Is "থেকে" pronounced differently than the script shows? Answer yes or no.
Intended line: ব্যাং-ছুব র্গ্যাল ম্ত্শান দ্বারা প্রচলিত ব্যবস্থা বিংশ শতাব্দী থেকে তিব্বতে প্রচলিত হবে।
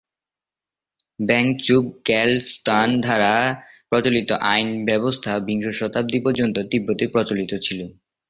yes